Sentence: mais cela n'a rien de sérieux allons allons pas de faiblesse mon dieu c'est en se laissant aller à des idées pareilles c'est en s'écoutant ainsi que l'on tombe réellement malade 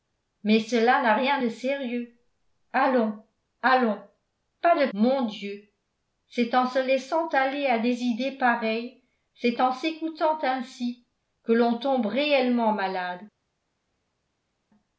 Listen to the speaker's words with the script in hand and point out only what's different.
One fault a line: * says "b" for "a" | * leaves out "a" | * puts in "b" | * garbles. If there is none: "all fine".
* leaves out "faiblesse"